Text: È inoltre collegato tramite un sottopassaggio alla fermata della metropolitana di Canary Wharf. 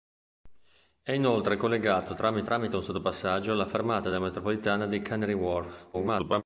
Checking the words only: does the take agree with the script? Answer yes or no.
no